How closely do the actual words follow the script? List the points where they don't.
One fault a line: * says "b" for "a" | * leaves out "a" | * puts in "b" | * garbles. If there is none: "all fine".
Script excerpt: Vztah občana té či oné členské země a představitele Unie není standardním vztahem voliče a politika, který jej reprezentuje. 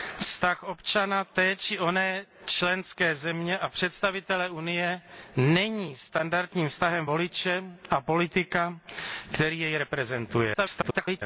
* garbles